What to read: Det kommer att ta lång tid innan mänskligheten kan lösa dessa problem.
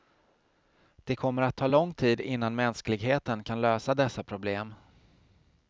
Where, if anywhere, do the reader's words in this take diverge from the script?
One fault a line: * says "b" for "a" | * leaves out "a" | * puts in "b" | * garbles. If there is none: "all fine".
all fine